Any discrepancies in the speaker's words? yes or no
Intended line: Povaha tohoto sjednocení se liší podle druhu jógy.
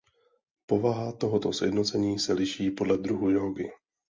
no